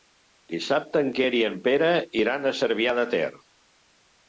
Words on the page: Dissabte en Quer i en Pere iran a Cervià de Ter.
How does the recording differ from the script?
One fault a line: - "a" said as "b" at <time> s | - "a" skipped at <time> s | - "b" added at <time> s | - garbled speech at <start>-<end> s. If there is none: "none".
none